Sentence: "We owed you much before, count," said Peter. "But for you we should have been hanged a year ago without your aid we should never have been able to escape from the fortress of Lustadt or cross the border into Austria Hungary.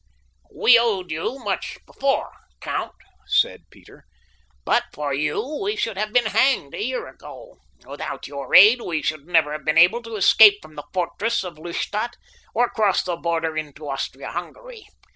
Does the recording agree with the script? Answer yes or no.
yes